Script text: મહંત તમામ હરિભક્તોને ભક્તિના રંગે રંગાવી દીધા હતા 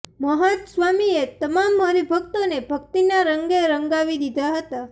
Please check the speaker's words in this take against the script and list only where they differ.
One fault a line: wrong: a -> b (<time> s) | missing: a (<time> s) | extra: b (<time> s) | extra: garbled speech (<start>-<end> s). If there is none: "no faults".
extra: સ્વામીએ (0.7 s)